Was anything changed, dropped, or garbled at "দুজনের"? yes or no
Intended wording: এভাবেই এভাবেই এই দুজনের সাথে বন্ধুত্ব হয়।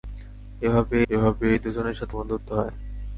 no